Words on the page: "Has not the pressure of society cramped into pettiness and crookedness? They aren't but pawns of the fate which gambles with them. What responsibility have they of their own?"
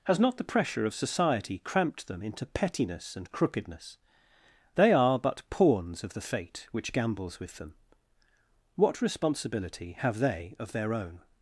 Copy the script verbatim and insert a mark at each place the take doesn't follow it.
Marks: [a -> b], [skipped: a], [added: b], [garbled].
"Has not the pressure of society cramped [added: them] into pettiness and crookedness? They [aren't -> are] but pawns of the fate which gambles with them. What responsibility have they of their own?"